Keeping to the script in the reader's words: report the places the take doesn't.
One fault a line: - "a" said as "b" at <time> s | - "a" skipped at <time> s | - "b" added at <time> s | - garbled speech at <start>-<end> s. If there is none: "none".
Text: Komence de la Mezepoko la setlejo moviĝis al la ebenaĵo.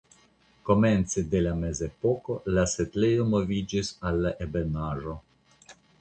none